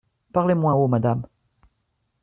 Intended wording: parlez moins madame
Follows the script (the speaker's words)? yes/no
no